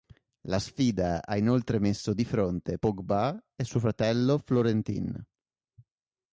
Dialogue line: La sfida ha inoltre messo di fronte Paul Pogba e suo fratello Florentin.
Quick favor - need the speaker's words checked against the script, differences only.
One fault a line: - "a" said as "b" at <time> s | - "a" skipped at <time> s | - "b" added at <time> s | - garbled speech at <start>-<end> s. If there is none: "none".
- "Paul" skipped at 2.8 s